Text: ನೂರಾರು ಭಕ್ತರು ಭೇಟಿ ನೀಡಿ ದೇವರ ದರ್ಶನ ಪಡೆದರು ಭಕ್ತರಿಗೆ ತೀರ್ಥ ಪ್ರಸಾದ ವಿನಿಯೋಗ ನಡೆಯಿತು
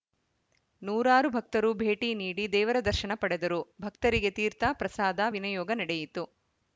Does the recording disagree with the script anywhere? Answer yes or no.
no